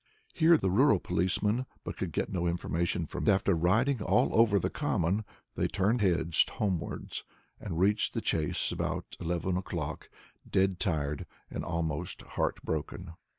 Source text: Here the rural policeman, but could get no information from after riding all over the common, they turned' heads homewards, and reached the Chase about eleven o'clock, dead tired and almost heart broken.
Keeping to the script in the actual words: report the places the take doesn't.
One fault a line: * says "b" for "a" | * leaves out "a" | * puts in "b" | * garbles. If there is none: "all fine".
all fine